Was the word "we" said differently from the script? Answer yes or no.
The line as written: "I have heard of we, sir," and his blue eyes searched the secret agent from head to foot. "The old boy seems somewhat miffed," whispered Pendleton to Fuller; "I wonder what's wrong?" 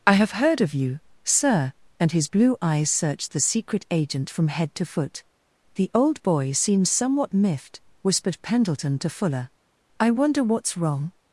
yes